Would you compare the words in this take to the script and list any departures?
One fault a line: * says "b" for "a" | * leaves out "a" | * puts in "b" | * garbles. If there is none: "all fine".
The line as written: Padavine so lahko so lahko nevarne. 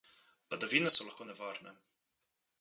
* leaves out "so lahko"